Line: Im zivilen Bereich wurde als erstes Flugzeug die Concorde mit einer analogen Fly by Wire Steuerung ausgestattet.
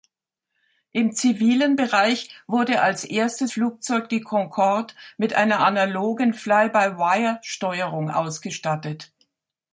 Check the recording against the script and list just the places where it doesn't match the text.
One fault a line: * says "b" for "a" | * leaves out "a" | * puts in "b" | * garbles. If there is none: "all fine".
all fine